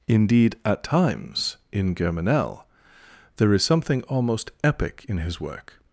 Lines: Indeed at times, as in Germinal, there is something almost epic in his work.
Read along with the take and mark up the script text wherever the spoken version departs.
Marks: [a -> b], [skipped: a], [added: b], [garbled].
Indeed at times, [skipped: as] in Germinal, there is something almost epic in his work.